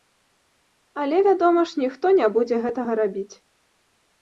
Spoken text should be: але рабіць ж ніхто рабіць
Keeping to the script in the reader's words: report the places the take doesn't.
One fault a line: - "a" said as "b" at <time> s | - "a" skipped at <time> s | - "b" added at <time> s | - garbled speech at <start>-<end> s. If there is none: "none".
- "рабіць" said as "вядома" at 1.2 s
- "не будзе гэтага" added at 2.2 s